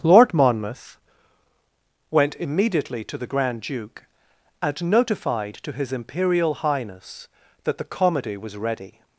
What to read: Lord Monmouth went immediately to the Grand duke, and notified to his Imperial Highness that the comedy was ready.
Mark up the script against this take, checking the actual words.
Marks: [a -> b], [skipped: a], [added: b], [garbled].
Lord Monmouth went immediately to the Grand duke, and notified to his Imperial Highness that the comedy was ready.